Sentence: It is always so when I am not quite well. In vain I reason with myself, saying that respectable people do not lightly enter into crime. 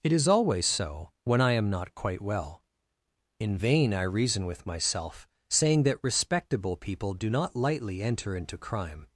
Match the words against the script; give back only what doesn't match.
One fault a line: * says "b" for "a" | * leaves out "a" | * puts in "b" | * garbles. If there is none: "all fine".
all fine